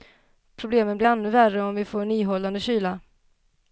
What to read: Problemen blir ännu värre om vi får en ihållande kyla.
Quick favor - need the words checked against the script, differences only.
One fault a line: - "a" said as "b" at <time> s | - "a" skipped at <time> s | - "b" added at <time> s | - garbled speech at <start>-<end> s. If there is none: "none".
none